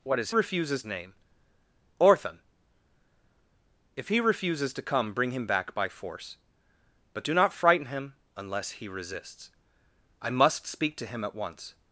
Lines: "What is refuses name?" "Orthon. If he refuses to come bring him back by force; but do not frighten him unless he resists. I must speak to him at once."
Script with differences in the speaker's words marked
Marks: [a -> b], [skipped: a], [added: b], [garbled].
"What is refuses name?" "Orthon. If he refuses to come bring him back by force; but do not frighten him unless he resists. I must speak to him at once."